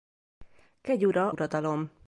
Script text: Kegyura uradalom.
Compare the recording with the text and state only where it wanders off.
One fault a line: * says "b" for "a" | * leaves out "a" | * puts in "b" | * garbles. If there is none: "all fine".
all fine